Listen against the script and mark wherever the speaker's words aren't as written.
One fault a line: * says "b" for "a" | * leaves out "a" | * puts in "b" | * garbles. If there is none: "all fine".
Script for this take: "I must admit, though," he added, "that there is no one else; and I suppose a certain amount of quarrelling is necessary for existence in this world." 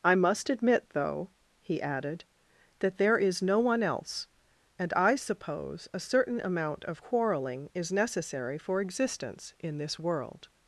all fine